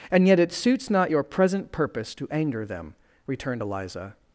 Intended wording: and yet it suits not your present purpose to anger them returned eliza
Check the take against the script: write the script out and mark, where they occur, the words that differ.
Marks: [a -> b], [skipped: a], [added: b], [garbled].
and yet it suits not your present purpose to anger them returned eliza